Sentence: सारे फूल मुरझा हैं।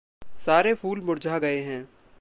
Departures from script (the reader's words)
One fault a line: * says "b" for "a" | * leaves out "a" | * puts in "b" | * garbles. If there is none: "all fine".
* puts in "गए"